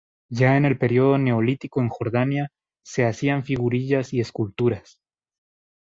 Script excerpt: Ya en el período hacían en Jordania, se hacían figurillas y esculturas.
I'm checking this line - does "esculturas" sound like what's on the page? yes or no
yes